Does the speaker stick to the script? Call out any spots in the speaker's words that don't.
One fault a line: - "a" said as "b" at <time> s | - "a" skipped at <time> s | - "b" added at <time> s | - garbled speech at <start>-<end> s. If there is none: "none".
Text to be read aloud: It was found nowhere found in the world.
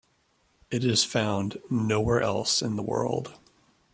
- "was" said as "is" at 0.8 s
- "found" said as "else" at 2.2 s